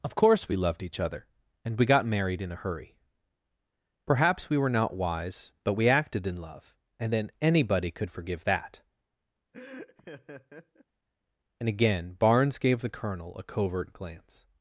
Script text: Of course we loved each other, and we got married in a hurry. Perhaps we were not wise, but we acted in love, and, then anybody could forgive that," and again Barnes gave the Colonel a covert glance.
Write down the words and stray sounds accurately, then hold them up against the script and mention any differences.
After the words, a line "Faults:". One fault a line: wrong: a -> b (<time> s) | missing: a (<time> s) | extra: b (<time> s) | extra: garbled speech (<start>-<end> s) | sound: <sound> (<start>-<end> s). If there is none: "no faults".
Of course we loved each other, and we got married in a hurry. Perhaps we were not wise, but we acted in love, and, then anybody could forgive that," and again Barnes gave the Colonel a covert glance.
Faults:
sound: laugh (9.5-10.8 s)